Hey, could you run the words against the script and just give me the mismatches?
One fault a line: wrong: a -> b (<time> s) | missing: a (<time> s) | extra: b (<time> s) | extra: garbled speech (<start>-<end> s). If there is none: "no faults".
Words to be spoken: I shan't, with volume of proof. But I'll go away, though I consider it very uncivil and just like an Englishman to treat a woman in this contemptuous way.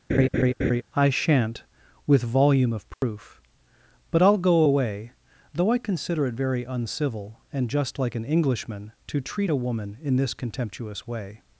no faults